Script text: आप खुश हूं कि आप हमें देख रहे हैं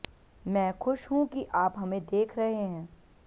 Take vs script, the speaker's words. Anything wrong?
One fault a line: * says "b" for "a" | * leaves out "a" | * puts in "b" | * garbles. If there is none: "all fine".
* says "मैं" for "आप"